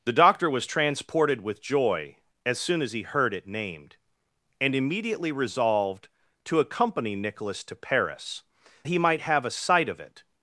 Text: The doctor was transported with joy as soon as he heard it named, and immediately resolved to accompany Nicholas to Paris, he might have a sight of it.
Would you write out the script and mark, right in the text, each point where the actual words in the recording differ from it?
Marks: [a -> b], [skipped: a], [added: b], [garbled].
The doctor was transported with joy as soon as he heard it named, and immediately resolved to accompany Nicholas to Paris, he might have a sight of it.